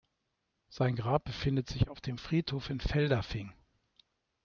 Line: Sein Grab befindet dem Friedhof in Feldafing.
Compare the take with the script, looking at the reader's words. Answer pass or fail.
fail